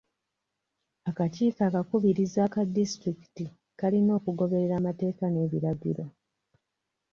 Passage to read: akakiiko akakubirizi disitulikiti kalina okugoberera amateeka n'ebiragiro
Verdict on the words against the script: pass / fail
fail